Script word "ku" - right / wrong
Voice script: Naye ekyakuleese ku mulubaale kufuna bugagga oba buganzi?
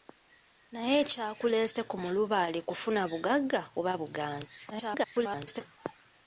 right